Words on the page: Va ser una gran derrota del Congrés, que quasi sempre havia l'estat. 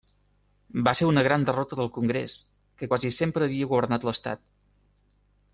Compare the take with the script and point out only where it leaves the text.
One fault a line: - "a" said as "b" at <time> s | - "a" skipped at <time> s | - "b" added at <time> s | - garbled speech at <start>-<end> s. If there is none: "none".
- "governat" added at 3.7 s